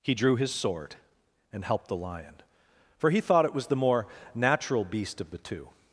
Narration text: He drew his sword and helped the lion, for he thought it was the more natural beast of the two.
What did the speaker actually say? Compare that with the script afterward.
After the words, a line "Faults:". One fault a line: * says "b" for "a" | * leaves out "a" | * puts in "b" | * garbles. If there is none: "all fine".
He drew his sword and helped the lion, for he thought it was the more natural beast of the two.
Faults:
all fine